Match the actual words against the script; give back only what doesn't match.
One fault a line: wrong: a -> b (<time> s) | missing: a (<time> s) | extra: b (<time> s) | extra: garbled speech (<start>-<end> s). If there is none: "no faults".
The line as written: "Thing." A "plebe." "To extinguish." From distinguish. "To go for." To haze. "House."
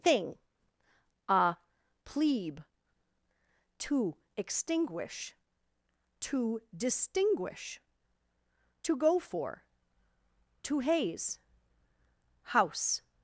wrong: From -> To (6.2 s)